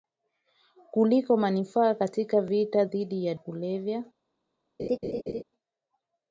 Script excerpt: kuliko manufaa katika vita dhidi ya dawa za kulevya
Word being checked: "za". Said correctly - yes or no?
no